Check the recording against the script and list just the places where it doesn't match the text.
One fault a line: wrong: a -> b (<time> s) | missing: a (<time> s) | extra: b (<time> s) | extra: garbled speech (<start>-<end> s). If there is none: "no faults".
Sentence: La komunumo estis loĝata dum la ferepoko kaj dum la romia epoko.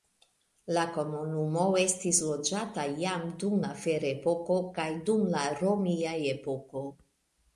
extra: jam (3.0 s)